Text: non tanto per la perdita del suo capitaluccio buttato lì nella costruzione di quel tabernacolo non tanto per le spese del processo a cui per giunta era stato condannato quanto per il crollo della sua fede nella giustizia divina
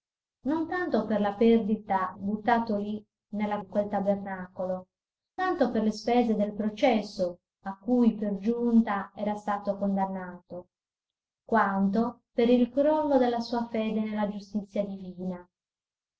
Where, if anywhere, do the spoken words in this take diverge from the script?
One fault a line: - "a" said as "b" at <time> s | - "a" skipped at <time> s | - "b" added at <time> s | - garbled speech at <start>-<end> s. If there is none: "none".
- "del suo capitaluccio" skipped at 2.1 s
- "costruzione" skipped at 3.6 s
- "non" skipped at 4.9 s